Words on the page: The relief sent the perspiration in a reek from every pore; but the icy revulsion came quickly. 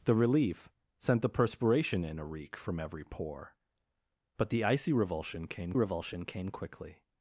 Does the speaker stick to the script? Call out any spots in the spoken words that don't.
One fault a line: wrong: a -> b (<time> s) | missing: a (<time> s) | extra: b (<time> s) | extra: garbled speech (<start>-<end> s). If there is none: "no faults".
extra: revulsion came (5.7 s)